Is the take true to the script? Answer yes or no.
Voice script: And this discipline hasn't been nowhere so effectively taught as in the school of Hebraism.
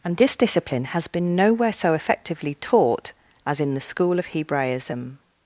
no